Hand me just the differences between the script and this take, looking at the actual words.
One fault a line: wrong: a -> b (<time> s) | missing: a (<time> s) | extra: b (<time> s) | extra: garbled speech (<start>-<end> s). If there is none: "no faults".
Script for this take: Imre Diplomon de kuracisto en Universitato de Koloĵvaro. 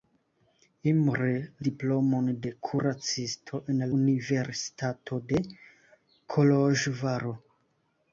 no faults